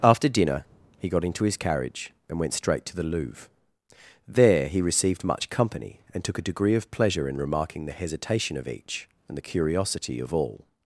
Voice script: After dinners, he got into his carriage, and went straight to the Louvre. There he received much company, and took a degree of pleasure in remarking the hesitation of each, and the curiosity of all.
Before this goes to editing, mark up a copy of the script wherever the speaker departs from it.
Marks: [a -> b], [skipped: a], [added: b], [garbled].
After [dinners, -> dinner] he got into his carriage, and went straight to the Louvre. There he received much company, and took a degree of pleasure in remarking the hesitation of each, and the curiosity of all.